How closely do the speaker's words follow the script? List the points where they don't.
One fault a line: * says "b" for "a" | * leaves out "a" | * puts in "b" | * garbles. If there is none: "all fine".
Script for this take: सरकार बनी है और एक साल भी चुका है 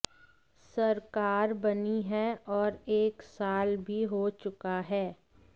* puts in "हो"